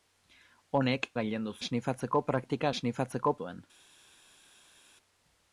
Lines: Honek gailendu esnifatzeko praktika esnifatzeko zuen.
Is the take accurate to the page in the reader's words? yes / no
yes